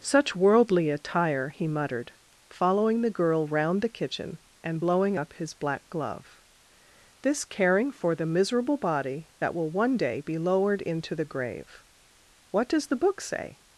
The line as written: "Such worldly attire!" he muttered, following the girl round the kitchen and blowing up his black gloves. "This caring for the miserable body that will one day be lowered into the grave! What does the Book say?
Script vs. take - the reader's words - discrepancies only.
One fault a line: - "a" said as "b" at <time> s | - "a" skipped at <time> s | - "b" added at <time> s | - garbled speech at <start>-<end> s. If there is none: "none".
- "gloves" said as "glove" at 5.9 s